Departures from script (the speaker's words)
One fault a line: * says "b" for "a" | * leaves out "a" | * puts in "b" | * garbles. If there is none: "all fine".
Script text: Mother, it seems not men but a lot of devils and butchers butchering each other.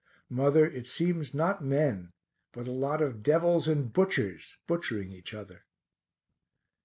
all fine